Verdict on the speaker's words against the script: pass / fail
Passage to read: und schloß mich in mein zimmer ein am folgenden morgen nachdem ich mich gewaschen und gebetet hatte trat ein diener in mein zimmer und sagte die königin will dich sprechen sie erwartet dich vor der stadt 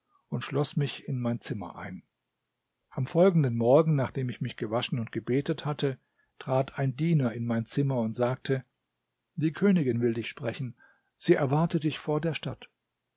pass